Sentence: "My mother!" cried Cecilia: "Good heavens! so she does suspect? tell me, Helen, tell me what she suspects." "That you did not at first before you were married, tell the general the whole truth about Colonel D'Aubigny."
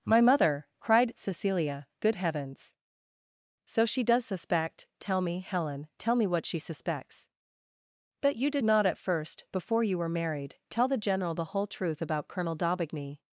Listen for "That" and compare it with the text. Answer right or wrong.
wrong